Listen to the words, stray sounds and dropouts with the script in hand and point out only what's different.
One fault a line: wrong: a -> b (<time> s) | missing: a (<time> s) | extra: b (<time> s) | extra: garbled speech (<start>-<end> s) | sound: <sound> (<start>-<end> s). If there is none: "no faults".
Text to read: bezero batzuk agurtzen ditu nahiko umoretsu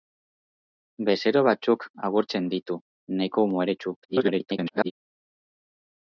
extra: garbled speech (4.0-4.9 s)